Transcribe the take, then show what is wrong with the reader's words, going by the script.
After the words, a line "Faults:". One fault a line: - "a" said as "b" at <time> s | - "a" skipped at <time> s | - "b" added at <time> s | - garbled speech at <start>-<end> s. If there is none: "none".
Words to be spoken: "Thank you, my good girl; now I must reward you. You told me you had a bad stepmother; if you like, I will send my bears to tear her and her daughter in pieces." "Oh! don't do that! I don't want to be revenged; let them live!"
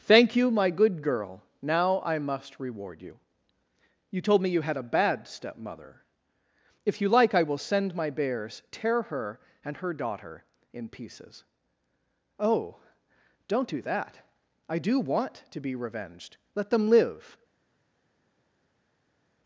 "Thank you, my good girl; now I must reward you. You told me you had a bad stepmother; if you like, I will send my bears tear her and her daughter in pieces." "Oh! don't do that! I do want to be revenged; let them live!"
Faults:
- "to" skipped at 8.6 s
- "don't" said as "do" at 14.8 s